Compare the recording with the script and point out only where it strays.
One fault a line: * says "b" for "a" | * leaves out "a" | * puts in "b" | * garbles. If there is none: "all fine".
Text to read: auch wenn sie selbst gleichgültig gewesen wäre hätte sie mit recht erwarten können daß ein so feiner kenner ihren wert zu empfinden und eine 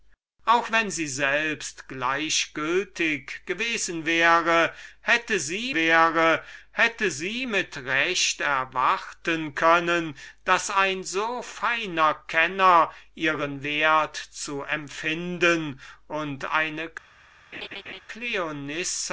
* puts in "wäre hätte sie"